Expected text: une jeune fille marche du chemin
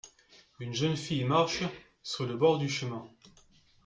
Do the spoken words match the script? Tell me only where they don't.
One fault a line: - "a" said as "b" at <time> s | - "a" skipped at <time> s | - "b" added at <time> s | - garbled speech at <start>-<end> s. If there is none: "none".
- "sur le bord" added at 2.0 s